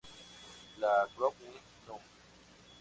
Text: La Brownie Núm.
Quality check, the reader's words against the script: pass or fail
pass